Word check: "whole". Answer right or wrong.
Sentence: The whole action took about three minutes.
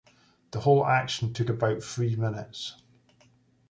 right